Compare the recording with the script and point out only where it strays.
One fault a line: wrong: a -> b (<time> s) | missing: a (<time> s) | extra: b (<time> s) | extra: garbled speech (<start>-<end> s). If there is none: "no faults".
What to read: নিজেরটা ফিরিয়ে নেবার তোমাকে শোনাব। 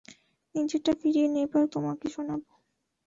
no faults